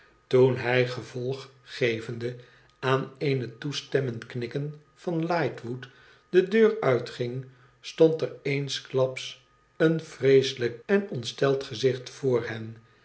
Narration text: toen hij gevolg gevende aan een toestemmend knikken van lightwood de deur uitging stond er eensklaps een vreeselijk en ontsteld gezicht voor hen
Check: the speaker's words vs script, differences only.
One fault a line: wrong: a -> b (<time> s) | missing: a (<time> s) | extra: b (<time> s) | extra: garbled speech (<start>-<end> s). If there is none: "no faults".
no faults